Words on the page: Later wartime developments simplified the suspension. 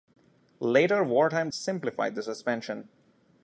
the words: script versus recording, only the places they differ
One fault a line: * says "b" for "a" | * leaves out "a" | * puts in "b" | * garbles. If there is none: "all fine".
* leaves out "developments"